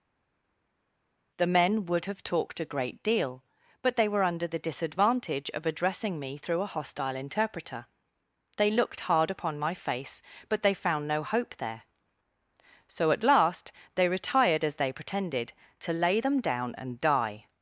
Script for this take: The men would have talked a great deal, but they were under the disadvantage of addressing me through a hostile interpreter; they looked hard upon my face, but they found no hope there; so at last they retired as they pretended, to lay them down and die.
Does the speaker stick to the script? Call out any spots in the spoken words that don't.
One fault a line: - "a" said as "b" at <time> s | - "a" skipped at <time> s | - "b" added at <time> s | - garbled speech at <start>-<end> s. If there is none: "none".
none